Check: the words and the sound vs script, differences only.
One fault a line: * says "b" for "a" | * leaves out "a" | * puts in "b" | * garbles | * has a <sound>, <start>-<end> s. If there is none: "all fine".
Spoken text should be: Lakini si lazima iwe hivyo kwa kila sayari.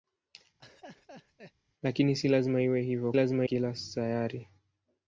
* has a laugh, 0.6-1.5 s
* says "lazima" for "kwa"